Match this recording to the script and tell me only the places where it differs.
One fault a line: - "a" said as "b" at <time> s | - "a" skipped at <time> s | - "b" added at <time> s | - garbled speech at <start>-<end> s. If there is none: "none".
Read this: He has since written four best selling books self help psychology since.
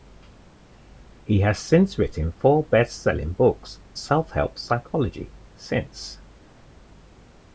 none